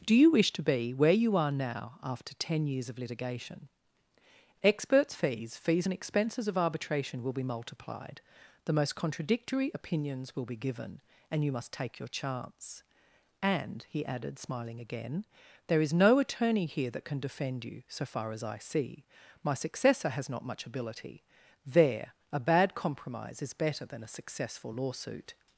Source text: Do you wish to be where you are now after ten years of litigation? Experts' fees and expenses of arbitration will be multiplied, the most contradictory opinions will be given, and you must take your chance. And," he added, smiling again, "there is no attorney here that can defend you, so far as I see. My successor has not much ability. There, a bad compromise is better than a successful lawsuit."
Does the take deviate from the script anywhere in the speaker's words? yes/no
yes